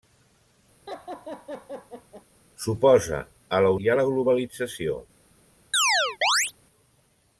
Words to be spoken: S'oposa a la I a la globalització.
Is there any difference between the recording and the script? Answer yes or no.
no